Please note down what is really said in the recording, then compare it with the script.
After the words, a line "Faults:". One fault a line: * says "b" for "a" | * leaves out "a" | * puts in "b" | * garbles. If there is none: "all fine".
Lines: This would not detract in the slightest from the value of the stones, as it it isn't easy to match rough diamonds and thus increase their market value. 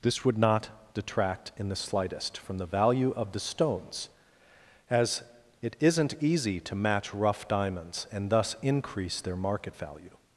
This would not detract in the slightest from the value of the stones, as it isn't easy to match rough diamonds and thus increase their market value.
Faults:
* leaves out "it"